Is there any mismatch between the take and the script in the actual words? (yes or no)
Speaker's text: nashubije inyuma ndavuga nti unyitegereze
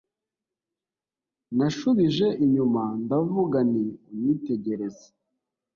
no